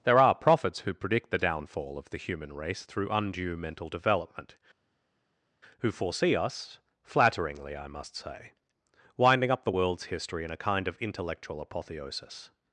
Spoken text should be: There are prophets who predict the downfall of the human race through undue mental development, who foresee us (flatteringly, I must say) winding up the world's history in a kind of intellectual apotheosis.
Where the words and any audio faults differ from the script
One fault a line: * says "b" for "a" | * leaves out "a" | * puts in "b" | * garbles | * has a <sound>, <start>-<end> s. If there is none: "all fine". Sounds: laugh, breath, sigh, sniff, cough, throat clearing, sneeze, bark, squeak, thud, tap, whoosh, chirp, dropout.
all fine